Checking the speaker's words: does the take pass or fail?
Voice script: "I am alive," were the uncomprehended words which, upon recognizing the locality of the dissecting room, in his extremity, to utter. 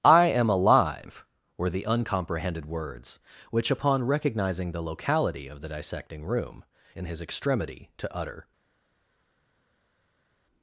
pass